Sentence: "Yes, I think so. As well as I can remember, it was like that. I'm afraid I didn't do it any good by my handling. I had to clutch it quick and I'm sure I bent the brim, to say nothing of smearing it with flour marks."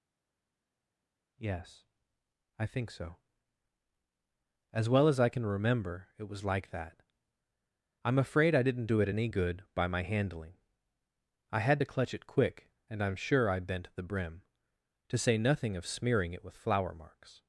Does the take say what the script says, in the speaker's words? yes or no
yes